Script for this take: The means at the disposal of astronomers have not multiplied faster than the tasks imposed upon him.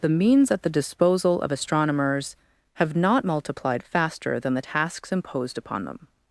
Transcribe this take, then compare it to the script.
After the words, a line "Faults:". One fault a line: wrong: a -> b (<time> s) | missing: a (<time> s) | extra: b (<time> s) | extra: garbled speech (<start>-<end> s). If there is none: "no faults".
The means at the disposal of astronomers have not multiplied faster than the tasks imposed upon them.
Faults:
wrong: him -> them (5.8 s)